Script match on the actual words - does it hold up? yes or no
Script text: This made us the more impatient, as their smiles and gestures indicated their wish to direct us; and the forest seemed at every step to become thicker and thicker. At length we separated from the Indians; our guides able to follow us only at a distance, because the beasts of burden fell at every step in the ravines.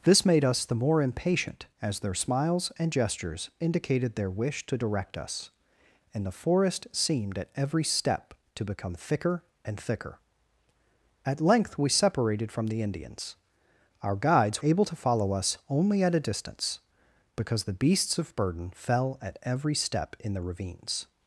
yes